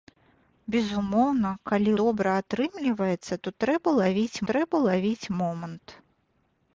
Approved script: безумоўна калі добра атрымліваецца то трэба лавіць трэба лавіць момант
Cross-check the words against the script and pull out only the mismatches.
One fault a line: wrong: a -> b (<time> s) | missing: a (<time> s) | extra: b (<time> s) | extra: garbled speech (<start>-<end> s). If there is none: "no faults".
no faults